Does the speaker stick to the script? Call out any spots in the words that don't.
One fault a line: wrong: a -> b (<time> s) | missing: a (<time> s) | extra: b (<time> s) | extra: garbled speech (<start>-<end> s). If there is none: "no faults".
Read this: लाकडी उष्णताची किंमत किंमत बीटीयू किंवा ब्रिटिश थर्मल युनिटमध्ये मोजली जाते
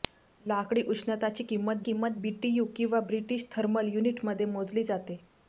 no faults